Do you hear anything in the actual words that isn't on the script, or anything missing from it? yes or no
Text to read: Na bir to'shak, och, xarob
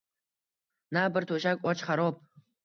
no